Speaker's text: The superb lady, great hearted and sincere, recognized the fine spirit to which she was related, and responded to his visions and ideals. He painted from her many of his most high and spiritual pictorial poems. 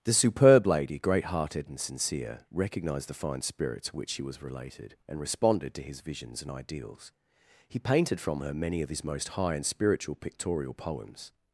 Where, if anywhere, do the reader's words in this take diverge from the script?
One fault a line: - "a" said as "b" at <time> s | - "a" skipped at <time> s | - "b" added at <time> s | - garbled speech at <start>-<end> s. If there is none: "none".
none